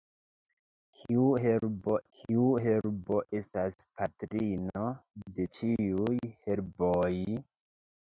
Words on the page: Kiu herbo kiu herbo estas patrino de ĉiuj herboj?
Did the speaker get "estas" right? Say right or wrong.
right